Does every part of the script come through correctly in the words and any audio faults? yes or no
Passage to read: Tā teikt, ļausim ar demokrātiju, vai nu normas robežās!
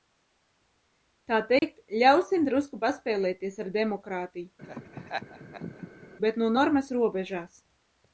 no